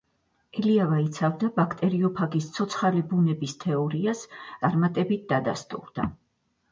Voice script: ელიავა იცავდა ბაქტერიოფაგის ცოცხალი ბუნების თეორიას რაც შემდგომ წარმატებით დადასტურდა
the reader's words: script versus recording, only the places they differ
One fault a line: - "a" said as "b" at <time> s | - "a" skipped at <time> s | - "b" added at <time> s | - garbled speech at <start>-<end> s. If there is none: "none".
- "რაც შემდგომ" skipped at 4.2 s